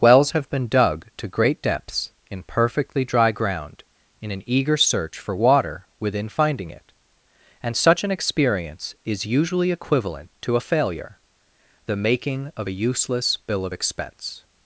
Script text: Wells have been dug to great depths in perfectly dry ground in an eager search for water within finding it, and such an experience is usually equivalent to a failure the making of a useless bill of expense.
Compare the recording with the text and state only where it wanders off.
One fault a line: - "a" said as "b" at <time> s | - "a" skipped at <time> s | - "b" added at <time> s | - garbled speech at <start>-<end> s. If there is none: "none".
none